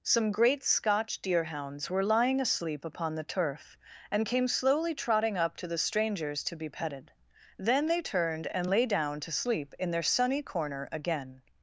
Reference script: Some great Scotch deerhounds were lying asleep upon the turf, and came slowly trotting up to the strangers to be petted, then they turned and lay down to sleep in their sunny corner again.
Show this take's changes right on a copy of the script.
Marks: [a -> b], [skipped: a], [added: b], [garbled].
Some great Scotch deerhounds were lying asleep upon the turf, and came slowly trotting up to the strangers to be petted, then they turned and lay down to sleep in their sunny corner again.